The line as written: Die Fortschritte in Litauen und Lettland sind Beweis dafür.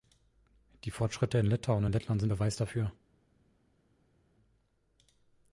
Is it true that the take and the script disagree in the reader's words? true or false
false